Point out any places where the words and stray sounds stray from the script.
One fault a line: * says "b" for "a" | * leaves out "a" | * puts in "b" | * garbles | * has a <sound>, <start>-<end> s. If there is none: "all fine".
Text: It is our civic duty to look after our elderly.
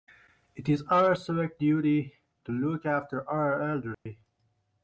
* has a dropout, 3.9-4.1 s